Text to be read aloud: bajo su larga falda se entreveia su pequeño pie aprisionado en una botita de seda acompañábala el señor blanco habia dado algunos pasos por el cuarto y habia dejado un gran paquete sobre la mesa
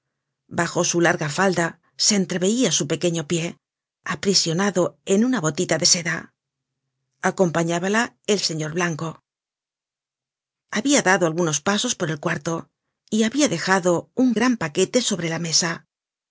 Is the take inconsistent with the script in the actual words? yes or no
no